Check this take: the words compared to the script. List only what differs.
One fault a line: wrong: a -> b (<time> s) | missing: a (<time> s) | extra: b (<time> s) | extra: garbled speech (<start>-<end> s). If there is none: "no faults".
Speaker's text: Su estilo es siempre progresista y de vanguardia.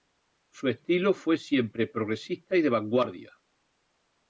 wrong: es -> fue (1.1 s)